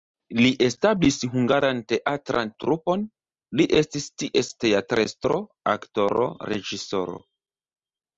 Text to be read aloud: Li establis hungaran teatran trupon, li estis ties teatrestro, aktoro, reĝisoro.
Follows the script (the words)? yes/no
yes